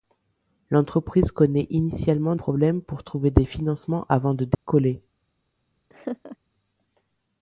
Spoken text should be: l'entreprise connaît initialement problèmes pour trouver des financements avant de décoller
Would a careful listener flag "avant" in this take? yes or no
no